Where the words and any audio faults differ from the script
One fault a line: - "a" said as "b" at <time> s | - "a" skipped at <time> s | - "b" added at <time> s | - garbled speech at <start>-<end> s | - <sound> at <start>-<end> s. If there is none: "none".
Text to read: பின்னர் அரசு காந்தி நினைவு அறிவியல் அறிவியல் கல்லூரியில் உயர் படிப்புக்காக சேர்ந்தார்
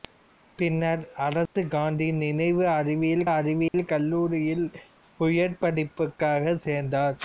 - dropout at 1.5-1.6 s
- dropout at 3.7-3.7 s